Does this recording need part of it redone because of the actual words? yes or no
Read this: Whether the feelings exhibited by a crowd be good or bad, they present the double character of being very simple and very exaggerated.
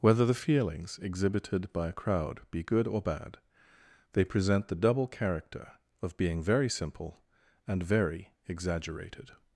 no